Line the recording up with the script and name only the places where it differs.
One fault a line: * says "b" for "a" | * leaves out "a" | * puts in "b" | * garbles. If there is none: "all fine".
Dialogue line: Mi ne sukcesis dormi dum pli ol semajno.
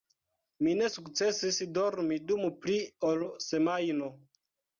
all fine